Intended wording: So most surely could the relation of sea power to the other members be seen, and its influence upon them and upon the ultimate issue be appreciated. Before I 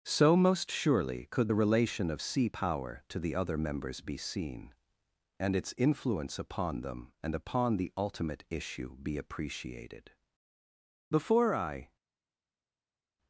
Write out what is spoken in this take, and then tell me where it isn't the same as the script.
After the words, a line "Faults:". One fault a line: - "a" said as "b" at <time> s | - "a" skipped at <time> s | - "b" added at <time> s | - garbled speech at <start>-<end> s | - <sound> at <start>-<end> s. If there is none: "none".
So most surely could the relation of sea power to the other members be seen, and its influence upon them and upon the ultimate issue be appreciated. Before I
Faults:
none